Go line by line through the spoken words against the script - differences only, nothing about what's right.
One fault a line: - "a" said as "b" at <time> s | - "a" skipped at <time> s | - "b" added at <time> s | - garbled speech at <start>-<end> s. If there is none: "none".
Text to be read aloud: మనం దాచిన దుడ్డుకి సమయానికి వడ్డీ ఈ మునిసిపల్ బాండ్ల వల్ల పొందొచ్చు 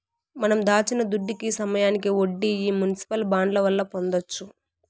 none